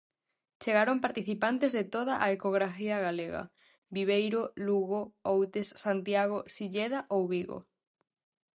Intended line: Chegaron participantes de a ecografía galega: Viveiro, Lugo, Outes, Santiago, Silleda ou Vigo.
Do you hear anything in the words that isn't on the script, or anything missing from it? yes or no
yes